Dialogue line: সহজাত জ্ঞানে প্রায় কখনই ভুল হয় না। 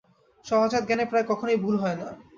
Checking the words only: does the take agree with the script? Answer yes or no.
yes